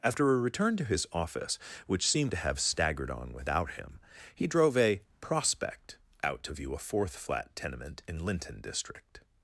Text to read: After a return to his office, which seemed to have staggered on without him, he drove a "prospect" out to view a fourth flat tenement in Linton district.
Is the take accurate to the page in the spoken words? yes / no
yes